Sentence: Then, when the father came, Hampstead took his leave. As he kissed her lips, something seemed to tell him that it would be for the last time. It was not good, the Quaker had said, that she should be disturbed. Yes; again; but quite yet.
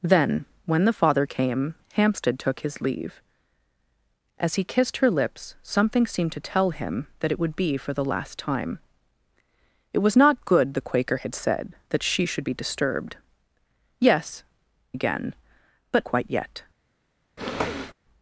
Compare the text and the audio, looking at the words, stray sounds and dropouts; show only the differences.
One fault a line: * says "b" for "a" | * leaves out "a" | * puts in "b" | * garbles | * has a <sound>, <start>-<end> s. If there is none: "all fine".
* has a sniff, 17.4-17.9 s